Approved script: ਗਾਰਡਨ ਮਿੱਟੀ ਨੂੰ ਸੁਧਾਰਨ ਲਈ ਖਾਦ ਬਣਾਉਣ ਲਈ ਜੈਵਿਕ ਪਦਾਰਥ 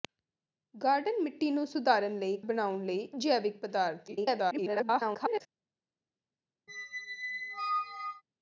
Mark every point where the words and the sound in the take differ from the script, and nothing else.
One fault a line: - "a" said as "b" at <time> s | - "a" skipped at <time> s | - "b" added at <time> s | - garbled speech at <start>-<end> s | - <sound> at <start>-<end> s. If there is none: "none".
- "ਖਾਦ" skipped at 2.4 s
- garbled speech at 4.1-5.4 s
- squeak at 6.7-8.2 s